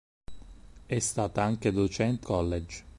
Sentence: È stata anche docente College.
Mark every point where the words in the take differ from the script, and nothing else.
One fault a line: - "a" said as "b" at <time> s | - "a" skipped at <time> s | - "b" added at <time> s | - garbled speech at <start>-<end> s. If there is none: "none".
none